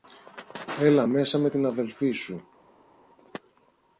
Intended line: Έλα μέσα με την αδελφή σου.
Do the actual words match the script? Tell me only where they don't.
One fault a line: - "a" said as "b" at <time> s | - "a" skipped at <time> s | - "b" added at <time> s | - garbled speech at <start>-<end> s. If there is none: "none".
none